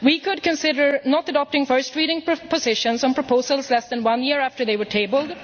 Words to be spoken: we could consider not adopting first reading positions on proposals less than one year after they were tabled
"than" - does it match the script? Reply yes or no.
yes